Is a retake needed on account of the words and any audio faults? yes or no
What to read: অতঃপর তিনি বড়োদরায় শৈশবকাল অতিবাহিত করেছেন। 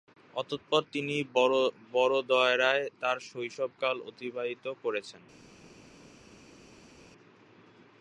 yes